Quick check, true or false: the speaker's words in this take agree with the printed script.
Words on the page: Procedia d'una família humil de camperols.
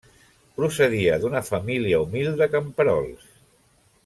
true